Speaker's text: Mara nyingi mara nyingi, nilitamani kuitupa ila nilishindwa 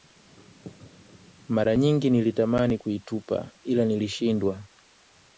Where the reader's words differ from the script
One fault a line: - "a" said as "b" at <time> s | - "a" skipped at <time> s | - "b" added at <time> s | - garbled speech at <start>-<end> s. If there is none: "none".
- "mara nyingi" skipped at 2.1 s